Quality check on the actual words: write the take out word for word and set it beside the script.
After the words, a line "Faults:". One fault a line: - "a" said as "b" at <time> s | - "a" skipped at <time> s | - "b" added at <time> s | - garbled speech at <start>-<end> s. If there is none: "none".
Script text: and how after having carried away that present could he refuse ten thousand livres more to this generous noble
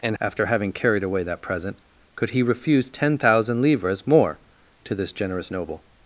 and after having carried away that present could he refuse ten thousand livres more to this generous noble
Faults:
- "how" skipped at 0.2 s